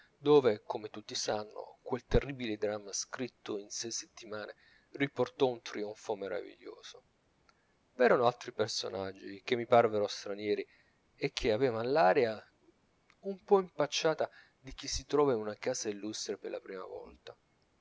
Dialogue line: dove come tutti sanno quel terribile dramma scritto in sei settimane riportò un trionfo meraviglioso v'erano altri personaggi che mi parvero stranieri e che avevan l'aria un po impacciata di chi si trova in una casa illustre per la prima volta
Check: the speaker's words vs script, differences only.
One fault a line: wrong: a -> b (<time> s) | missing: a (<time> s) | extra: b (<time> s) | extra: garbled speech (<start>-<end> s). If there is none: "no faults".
no faults